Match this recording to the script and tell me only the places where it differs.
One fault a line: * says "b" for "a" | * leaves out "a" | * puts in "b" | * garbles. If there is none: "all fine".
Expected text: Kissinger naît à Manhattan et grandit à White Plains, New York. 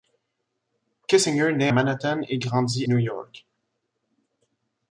* leaves out "à"
* leaves out "à White Plains"